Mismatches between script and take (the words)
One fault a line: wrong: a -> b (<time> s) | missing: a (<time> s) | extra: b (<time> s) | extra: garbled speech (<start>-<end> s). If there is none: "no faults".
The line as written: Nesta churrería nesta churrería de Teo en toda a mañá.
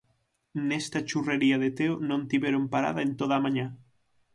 wrong: nesta churrería de Teo -> de Teo non tiveron parada (1.6 s)